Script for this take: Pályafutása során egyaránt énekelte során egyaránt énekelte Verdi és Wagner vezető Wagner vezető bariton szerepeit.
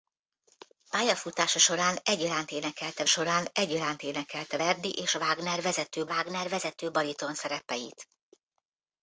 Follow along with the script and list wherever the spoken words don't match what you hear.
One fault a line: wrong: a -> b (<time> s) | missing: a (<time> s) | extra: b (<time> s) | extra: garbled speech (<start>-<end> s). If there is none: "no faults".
no faults